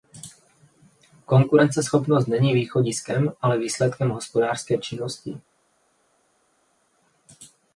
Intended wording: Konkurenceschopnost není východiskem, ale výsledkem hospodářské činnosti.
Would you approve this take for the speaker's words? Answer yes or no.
yes